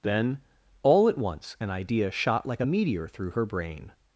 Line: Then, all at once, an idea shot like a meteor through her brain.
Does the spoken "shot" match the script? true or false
true